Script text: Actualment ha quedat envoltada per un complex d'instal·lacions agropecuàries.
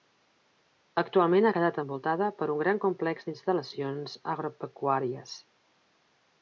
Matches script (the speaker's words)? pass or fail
fail